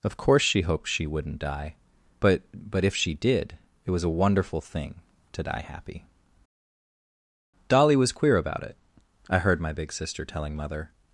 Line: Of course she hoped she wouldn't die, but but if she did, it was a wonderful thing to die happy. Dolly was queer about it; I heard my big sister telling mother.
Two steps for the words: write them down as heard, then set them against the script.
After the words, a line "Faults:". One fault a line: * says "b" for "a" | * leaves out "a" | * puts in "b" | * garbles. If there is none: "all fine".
Of course she hoped she wouldn't die, but but if she did, it was a wonderful thing to die happy. Dolly was queer about it; I heard my big sister telling mother.
Faults:
all fine